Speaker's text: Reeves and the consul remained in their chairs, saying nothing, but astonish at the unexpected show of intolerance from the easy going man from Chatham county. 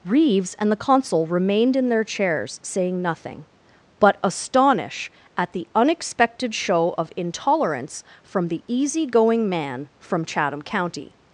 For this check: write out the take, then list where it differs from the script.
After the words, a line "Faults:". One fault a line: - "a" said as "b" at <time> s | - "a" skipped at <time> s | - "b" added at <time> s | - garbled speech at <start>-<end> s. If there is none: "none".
Reeves and the consul remained in their chairs, saying nothing, but astonish at the unexpected show of intolerance from the easy going man from Chatham county.
Faults:
none